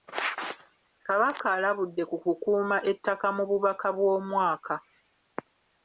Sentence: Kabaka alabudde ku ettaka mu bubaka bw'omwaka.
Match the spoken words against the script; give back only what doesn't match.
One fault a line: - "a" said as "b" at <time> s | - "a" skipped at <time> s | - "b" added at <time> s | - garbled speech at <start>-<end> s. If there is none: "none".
- "kukuuma" added at 2.2 s